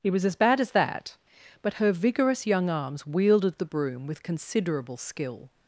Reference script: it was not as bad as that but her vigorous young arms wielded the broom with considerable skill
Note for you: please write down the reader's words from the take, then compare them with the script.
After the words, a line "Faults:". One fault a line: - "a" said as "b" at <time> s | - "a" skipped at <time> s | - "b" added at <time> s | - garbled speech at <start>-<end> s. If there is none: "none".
it was as bad as that but her vigorous young arms wielded the broom with considerable skill
Faults:
- "not" skipped at 0.2 s